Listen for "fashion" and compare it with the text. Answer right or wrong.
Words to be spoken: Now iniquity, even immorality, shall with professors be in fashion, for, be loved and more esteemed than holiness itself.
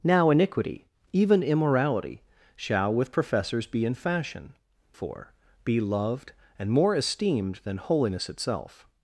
right